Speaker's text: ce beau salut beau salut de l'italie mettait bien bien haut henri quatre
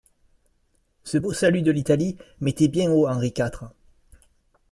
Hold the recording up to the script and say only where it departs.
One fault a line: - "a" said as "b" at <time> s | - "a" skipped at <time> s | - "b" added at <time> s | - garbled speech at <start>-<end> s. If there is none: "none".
- "beau salut" skipped at 1.6 s
- "bien" skipped at 2.9 s